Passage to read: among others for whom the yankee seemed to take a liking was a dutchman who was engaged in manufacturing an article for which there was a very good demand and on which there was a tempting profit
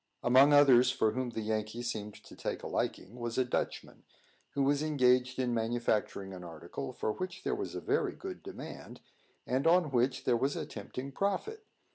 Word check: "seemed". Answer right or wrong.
right